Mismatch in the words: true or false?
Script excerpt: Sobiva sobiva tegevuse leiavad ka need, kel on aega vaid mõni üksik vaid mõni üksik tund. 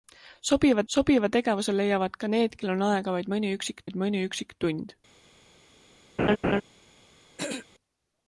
false